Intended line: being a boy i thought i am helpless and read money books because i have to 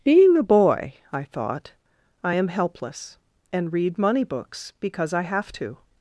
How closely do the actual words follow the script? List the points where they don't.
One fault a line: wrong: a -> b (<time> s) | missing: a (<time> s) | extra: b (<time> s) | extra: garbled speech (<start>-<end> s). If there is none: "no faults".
no faults